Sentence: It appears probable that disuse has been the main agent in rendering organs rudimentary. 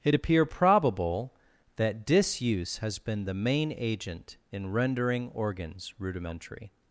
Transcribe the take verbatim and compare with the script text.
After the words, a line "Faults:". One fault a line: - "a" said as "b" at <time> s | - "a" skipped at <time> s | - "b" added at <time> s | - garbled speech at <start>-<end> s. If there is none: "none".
It appear probable that disuse has been the main agent in rendering organs rudimentary.
Faults:
- "appears" said as "appear" at 0.1 s